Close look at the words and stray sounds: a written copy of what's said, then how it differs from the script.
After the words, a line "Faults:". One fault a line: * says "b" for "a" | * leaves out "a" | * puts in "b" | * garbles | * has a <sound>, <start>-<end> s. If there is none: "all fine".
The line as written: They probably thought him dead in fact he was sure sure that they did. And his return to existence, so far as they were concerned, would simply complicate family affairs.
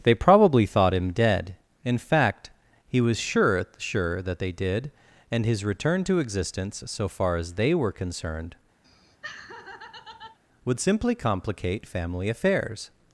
They probably thought him dead in fact he was sure sure that they did. And his return to existence, so far as they were concerned, would simply complicate family affairs.
Faults:
* has a laugh, 8.8-10.4 s